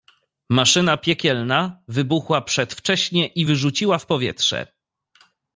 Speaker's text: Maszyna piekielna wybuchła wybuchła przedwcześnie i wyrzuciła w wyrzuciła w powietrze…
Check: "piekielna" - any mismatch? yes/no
no